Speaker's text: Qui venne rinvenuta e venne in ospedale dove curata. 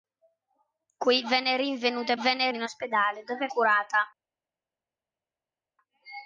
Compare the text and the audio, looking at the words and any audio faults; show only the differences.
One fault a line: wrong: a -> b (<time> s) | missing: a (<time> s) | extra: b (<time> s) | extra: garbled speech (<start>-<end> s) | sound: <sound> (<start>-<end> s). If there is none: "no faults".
no faults